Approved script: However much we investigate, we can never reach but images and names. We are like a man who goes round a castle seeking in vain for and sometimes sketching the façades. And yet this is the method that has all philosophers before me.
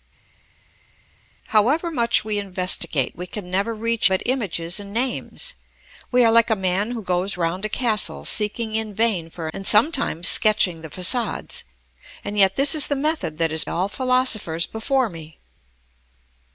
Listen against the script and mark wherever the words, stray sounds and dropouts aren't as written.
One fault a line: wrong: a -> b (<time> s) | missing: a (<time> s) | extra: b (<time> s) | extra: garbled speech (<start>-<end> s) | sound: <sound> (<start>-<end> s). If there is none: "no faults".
no faults